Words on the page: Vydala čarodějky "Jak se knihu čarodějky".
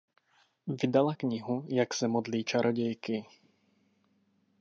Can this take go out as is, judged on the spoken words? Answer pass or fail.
fail